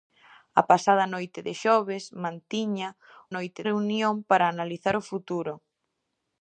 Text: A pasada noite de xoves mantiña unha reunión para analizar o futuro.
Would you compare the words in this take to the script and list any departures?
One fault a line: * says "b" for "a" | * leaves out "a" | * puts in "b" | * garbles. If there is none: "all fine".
* says "noite" for "unha"